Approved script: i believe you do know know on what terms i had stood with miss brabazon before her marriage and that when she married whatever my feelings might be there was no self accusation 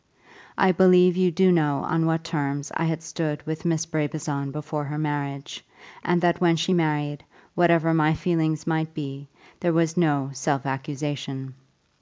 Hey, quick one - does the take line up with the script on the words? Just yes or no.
no